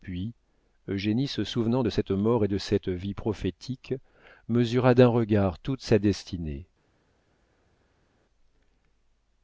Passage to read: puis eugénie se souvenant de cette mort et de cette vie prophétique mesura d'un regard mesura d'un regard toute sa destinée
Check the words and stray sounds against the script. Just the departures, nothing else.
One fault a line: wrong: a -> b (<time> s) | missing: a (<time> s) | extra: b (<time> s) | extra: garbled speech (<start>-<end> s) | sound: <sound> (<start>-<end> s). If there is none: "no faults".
missing: mesura d'un regard (5.6 s)